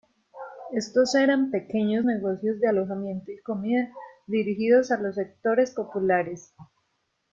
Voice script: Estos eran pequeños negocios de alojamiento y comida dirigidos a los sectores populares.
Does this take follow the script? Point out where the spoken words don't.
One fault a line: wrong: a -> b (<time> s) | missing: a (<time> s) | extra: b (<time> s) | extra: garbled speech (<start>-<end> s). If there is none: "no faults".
no faults